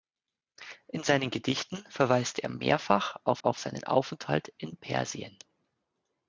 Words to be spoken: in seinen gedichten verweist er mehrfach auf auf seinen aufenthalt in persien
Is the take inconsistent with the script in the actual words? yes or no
no